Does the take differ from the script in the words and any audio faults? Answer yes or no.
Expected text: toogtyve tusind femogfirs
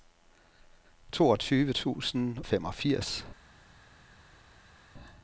no